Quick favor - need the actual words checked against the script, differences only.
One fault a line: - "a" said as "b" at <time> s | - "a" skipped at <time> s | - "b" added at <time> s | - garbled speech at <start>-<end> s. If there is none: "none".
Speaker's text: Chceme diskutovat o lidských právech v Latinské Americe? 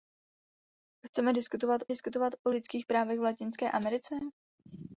- "diskutovat" added at 1.9 s